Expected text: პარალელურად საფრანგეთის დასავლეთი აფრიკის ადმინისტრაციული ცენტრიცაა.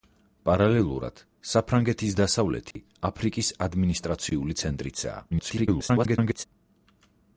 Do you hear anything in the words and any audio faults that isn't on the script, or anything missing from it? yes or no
yes